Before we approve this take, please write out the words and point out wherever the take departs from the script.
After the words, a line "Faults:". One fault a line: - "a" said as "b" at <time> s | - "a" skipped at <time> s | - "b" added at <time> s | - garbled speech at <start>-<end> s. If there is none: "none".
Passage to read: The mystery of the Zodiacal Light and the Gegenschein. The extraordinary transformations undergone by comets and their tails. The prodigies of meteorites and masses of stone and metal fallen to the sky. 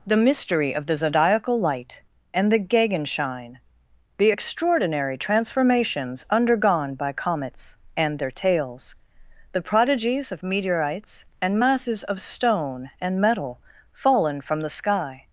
The mystery of the Zodiacal Light and the Gegenschein. The extraordinary transformations undergone by comets and their tails. The prodigies of meteorites and masses of stone and metal fallen from the sky.
Faults:
- "to" said as "from" at 14.4 s